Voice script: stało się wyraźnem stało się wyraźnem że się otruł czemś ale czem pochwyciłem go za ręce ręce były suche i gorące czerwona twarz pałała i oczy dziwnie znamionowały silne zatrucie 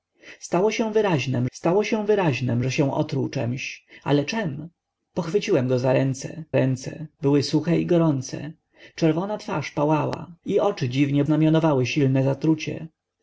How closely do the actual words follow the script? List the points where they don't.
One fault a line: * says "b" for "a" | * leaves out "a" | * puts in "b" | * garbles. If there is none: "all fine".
all fine